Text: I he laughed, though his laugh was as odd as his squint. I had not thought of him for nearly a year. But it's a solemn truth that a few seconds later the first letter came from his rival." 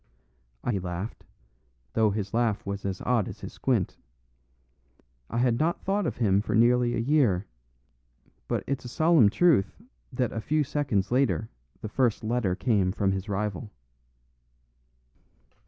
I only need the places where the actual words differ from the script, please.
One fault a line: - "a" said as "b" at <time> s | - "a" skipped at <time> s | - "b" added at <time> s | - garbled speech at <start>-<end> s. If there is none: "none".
none